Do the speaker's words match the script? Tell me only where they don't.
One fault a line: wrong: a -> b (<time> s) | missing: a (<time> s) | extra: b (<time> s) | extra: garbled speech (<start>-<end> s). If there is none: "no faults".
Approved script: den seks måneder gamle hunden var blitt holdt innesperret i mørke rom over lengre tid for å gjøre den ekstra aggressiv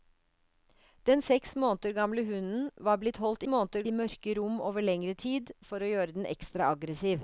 wrong: innesperret -> måneder (3.5 s)